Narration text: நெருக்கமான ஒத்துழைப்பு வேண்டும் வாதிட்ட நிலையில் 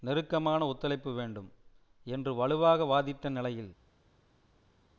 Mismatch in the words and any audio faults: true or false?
true